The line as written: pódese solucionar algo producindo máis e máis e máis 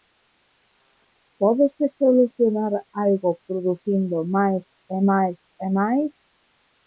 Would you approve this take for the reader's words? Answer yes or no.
yes